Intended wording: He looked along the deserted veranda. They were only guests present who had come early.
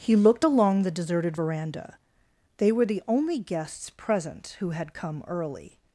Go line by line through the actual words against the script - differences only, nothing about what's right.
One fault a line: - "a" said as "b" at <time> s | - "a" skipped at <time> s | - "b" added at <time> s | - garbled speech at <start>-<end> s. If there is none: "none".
- "the" added at 2.8 s